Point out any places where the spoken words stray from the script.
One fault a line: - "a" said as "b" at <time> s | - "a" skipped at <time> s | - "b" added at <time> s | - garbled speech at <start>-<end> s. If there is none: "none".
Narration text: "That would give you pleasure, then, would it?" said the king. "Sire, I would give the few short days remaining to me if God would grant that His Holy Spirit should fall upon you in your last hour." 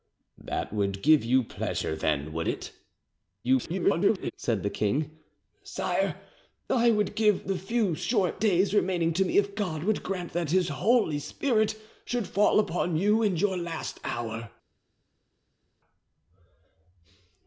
- garbled speech at 3.4-4.3 s